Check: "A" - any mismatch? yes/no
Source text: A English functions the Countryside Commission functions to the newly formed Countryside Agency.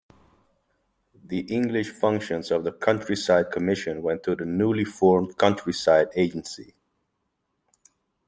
yes